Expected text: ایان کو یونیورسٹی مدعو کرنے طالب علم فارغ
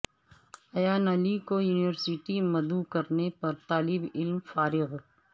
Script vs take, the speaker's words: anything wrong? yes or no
yes